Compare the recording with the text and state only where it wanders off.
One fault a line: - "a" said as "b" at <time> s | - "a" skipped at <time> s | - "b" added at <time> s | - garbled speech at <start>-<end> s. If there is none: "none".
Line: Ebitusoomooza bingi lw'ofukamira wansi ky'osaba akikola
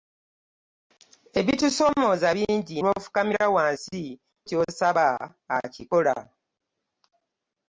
none